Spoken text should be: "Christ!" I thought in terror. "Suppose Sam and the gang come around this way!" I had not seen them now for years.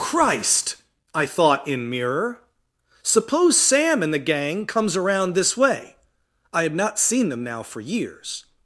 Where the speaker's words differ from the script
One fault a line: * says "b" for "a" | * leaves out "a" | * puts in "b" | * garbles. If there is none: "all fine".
* says "mirror" for "terror"
* says "comes" for "come"